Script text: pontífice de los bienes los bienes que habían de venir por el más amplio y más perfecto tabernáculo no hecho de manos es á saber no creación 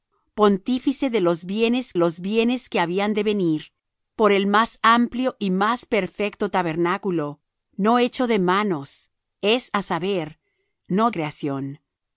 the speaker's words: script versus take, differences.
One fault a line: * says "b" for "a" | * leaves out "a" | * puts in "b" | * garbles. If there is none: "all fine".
all fine